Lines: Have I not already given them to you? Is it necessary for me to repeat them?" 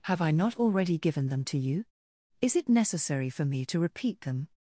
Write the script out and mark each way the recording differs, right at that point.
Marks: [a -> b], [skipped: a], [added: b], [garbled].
Have I not already given them to you? Is it necessary for me to repeat them?"